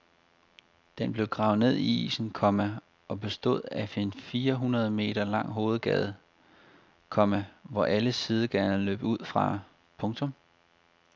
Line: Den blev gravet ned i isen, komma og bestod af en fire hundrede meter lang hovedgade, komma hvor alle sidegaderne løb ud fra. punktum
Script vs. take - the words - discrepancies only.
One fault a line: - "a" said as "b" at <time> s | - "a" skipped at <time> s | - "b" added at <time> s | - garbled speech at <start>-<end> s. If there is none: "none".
none